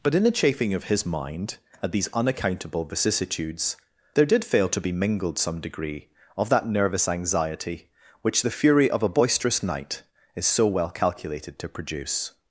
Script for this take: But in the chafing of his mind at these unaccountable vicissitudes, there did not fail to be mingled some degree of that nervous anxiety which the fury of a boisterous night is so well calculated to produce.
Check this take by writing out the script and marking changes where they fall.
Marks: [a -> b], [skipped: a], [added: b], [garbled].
But in the chafing of his mind at these unaccountable vicissitudes, there did [skipped: not] fail to be mingled some degree of that nervous anxiety which the fury of a boisterous night is so well calculated to produce.